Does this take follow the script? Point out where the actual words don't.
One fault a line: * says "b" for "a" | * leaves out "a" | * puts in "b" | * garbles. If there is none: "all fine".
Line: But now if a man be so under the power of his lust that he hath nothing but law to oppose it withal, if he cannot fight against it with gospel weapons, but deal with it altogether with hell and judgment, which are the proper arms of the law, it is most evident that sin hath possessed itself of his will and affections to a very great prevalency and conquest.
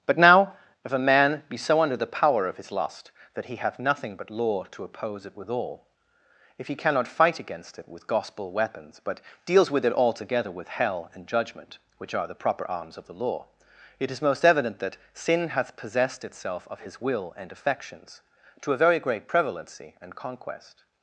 * says "deals" for "deal"